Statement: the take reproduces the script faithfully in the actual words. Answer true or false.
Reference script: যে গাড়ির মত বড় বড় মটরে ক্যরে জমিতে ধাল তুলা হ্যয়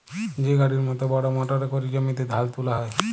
false